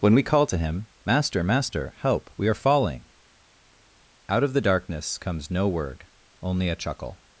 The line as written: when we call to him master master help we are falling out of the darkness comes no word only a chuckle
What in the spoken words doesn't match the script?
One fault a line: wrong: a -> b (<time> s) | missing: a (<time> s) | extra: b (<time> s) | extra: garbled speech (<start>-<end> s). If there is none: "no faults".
no faults